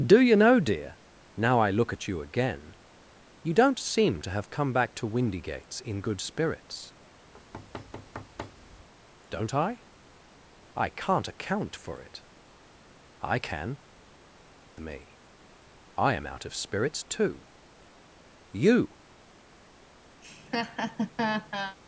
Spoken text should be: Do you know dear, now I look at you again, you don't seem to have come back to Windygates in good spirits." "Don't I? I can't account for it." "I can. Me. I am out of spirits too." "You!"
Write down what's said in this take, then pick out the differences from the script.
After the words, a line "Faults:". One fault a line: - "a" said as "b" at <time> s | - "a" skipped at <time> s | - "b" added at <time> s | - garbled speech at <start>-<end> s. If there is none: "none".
Do you know dear, now I look at you again, you don't seem to have come back to Windygates in good spirits." "Don't I? I can't account for it." "I can. Me. I am out of spirits too." "You!"
Faults:
none